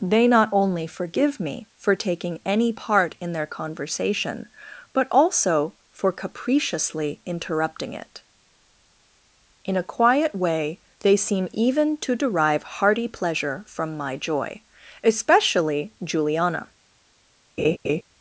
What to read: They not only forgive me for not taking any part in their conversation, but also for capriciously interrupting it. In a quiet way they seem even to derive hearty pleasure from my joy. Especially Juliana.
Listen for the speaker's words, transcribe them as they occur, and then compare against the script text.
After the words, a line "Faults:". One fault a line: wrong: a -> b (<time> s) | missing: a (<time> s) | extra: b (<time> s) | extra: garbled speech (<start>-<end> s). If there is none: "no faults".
They not only forgive me for taking any part in their conversation, but also for capriciously interrupting it. In a quiet way they seem even to derive hearty pleasure from my joy. Especially Juliana.
Faults:
missing: not (1.9 s)